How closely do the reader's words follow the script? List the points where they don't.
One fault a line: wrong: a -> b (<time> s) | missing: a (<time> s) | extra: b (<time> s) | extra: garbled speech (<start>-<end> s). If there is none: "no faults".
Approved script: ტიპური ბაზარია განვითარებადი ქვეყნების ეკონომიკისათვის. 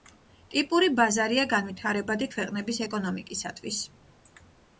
no faults